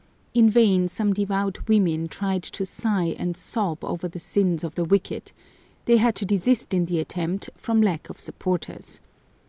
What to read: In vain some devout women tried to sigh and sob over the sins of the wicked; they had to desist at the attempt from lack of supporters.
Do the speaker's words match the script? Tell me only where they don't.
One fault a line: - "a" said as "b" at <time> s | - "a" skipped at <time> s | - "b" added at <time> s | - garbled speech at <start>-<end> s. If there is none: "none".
- "at" said as "in" at 6.7 s